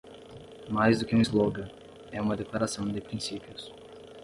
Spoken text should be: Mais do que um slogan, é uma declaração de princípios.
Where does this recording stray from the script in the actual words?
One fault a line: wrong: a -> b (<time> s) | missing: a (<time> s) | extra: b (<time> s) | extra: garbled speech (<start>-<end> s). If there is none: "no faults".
no faults